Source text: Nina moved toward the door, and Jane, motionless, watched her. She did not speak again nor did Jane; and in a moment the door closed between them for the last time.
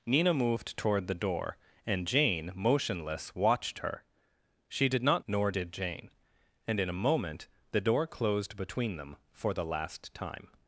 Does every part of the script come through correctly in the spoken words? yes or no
no